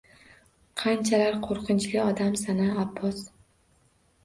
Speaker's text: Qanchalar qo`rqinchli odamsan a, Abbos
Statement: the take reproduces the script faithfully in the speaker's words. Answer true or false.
true